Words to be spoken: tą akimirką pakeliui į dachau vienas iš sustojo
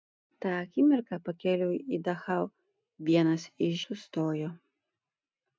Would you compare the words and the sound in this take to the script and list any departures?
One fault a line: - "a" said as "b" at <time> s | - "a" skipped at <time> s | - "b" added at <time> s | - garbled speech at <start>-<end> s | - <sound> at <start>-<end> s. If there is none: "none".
none